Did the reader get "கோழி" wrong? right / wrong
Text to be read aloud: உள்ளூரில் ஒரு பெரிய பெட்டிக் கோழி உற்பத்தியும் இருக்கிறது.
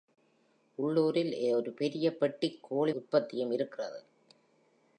right